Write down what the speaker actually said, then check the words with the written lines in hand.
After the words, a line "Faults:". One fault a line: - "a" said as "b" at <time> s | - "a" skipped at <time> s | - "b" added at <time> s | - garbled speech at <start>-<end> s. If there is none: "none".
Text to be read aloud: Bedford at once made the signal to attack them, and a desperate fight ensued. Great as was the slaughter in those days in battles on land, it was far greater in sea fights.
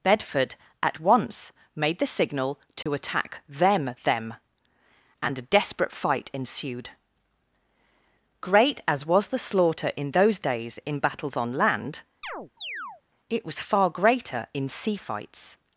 Bedford at once made the signal to attack them them, and a desperate fight ensued. Great as was the slaughter in those days in battles on land, it was far greater in sea fights.
Faults:
- "them" added at 4.0 s